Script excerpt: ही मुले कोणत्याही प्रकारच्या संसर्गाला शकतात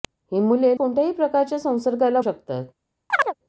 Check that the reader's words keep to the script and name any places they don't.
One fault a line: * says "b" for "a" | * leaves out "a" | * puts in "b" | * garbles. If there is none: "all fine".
all fine